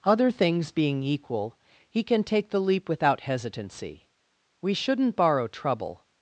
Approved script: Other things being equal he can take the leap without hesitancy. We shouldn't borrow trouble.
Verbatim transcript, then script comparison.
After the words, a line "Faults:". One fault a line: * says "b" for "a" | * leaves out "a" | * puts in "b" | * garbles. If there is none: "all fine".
Other things being equal he can take the leap without hesitancy. We shouldn't borrow trouble.
Faults:
all fine